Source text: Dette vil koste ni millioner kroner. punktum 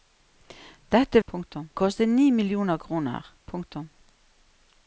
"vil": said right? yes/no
no